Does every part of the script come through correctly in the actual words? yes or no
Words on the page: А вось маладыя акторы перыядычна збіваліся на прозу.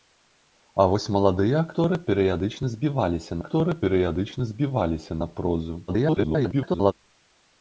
no